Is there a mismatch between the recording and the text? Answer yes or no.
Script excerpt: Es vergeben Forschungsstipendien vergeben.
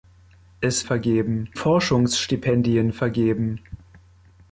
no